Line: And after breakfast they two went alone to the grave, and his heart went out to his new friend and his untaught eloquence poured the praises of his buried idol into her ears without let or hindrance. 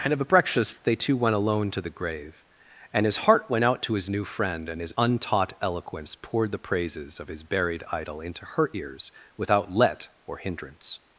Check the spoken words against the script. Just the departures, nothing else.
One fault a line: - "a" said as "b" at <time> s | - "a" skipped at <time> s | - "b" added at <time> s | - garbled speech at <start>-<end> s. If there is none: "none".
- "after" said as "of a" at 0.1 s